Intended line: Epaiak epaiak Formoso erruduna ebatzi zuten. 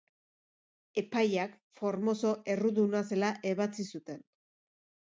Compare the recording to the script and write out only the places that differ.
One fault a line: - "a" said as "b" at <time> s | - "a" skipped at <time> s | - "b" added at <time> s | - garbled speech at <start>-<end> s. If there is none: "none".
- "epaiak" skipped at 1.5 s
- "zela" added at 3.1 s